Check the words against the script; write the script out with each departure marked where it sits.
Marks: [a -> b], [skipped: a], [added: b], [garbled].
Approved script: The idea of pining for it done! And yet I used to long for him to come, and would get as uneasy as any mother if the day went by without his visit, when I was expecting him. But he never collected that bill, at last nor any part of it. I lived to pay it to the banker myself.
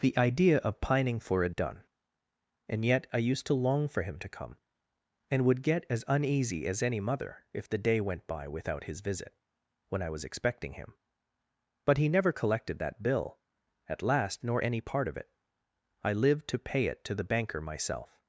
The idea of pining for it done! And yet I used to long for him to come, and would get as uneasy as any mother if the day went by without his visit, when I was expecting him. But he never collected that bill, at last nor any part of it. I lived to pay it to the banker myself.